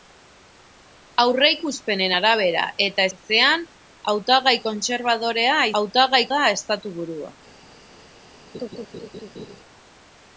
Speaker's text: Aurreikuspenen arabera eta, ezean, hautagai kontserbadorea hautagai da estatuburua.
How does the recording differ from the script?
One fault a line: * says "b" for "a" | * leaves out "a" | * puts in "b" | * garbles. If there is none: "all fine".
all fine